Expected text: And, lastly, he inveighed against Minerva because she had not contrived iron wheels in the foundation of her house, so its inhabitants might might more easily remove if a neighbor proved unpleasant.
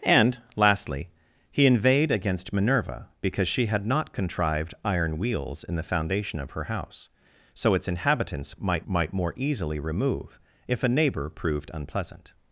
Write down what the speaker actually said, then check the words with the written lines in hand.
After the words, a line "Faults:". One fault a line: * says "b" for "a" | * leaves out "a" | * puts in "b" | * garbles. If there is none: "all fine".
And, lastly, he inveighed against Minerva because she had not contrived iron wheels in the foundation of her house, so its inhabitants might might more easily remove if a neighbor proved unpleasant.
Faults:
all fine